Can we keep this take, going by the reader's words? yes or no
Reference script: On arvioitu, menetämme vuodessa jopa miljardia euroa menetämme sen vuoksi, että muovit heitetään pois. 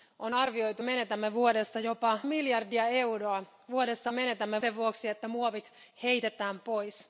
yes